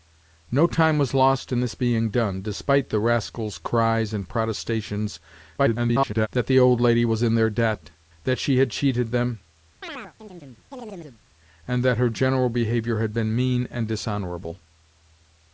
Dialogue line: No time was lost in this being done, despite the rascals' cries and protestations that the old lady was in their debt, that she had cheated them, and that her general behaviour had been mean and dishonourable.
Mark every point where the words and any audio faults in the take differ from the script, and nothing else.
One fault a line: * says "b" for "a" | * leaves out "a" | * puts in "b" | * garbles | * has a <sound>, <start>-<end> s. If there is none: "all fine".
* garbles
* has a chirp, 9.8-11.2 s